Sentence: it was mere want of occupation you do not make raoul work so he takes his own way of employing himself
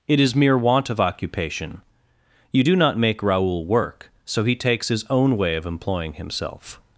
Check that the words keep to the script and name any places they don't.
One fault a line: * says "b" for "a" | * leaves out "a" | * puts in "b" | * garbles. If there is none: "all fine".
* says "is" for "was"